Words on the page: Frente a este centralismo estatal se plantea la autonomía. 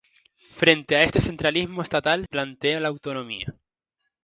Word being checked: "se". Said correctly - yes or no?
no